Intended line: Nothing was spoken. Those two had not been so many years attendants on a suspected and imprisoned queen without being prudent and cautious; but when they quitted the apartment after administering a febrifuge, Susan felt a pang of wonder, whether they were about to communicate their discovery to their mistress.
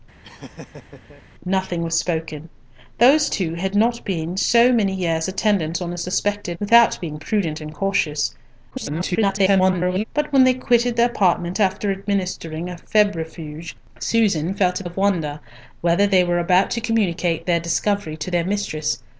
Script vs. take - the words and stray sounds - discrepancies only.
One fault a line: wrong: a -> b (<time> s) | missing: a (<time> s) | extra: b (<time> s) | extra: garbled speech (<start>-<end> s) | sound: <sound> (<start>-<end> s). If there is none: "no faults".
sound: laugh (0.2-1.2 s)
missing: and imprisoned queen (6.6 s)
extra: garbled speech (8.7-10.0 s)
missing: pang (14.8 s)